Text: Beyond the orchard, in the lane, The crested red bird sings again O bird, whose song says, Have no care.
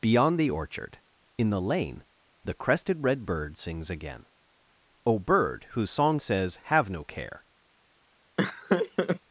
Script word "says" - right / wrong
right